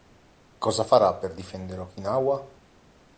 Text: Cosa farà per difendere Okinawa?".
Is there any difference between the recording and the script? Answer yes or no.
no